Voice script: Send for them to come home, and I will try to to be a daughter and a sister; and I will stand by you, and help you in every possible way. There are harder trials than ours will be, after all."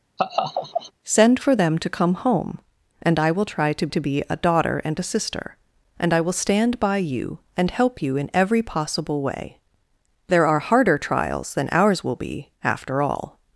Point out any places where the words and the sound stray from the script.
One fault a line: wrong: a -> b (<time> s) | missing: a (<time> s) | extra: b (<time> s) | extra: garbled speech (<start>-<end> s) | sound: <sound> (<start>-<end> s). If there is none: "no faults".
sound: laugh (0.2-0.9 s)